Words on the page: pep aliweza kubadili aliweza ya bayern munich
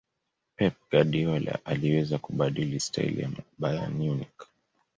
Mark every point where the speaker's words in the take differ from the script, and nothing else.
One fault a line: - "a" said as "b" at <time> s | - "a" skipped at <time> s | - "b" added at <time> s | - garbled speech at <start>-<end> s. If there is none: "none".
- "guardiola" added at 0.9 s
- "aliweza" said as "staili" at 2.8 s